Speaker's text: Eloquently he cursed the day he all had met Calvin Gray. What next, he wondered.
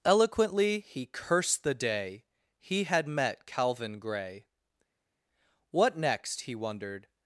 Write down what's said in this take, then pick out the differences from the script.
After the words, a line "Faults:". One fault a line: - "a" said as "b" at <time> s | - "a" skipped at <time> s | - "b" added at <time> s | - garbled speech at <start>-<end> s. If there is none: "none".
Eloquently he cursed the day he had met Calvin Gray. What next, he wondered.
Faults:
- "all" skipped at 2.8 s